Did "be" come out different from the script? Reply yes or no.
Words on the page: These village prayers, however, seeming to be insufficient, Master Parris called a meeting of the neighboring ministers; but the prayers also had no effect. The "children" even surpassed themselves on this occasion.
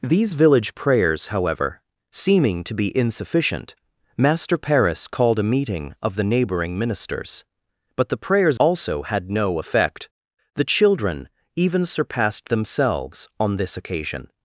no